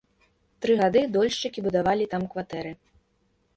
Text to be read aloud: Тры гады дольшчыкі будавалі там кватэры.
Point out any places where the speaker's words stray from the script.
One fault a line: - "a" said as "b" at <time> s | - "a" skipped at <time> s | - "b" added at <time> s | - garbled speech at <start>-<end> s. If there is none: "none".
none